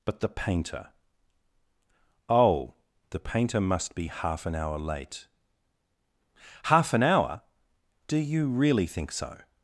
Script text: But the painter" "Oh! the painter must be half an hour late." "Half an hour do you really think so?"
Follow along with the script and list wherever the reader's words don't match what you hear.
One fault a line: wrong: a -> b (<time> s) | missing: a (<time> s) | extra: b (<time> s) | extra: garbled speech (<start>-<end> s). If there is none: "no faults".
no faults